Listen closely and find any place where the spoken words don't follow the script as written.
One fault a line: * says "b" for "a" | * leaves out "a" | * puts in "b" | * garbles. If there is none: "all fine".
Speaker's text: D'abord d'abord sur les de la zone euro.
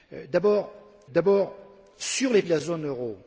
all fine